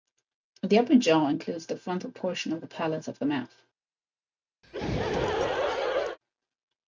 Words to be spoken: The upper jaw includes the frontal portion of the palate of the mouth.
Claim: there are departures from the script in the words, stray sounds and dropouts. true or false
true